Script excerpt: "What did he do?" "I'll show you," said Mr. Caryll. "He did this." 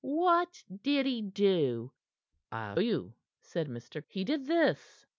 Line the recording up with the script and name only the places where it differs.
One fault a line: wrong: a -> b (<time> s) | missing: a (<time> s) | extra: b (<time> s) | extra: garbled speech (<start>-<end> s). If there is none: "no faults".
missing: show (2.8 s)
missing: Caryll (4.0 s)